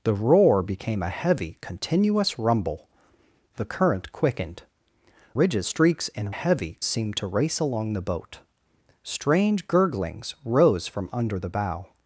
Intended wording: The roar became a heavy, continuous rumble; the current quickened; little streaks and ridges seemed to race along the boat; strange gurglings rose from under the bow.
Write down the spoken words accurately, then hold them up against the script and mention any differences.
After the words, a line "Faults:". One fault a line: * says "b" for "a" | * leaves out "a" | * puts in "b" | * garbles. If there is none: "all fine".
The roar became a heavy, continuous rumble; the current quickened; ridges streaks and heavy seemed to race along the boat; strange gurglings rose from under the bow.
Faults:
* says "ridges" for "little"
* says "heavy" for "ridges"